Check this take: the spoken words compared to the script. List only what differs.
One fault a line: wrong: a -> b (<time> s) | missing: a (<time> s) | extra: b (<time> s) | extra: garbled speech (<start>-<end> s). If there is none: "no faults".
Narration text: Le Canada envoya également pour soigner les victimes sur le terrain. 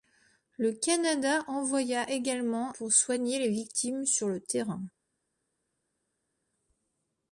no faults